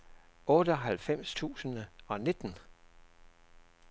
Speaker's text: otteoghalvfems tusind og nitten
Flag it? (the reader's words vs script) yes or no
no